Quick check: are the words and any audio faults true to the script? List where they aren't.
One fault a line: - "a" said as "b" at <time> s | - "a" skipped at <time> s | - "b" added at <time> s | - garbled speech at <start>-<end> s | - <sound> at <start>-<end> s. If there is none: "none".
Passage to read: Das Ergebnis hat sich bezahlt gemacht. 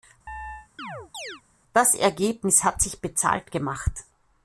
- chirp at 0.3-1.4 s